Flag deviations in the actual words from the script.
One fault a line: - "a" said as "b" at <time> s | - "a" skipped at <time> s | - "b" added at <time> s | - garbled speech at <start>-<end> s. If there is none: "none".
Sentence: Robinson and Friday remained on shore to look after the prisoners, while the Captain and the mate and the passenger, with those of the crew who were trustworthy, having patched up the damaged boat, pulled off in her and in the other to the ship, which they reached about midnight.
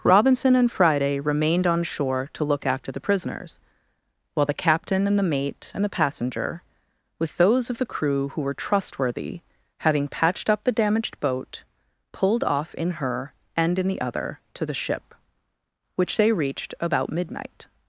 none